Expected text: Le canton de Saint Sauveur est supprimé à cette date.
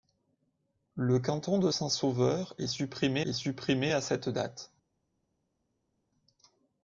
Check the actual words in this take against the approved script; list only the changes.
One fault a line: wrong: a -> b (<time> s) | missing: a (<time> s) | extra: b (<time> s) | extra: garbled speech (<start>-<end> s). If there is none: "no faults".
extra: est supprimé (3.2 s)